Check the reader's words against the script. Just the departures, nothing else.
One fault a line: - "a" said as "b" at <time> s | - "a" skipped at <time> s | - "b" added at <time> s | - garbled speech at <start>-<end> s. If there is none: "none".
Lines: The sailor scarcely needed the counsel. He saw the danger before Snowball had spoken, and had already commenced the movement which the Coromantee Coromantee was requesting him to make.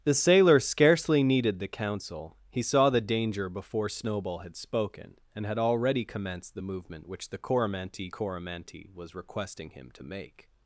none